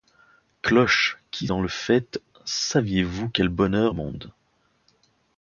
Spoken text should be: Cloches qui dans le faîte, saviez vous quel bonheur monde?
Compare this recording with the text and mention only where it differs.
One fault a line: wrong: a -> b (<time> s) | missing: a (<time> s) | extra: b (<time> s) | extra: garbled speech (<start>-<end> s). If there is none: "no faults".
no faults